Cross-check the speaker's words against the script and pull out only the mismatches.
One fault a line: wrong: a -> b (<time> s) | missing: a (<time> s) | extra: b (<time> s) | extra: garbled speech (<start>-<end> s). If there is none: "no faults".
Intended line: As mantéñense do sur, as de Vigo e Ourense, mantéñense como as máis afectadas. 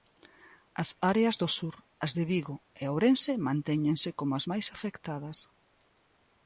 wrong: mantéñense -> áreas (1.1 s)